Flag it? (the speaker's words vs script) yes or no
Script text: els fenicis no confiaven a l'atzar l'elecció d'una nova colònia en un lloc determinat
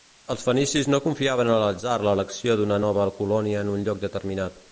no